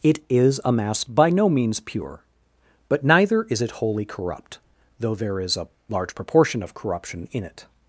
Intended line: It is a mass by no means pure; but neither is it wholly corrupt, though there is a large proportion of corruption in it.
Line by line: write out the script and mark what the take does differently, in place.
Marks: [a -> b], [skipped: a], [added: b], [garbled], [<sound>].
It is a mass by no means pure; but neither is it wholly corrupt, though there is a large proportion of corruption in it.